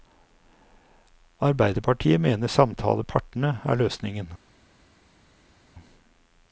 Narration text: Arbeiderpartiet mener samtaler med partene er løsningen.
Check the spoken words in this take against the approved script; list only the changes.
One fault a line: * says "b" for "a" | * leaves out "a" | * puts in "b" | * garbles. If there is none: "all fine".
* leaves out "med"